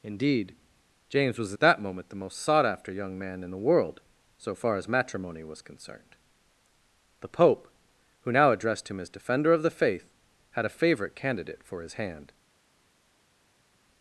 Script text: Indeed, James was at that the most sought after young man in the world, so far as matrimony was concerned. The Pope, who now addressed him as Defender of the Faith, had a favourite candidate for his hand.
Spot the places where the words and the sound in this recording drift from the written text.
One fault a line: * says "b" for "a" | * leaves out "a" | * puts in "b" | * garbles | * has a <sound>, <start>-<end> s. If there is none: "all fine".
* puts in "moment"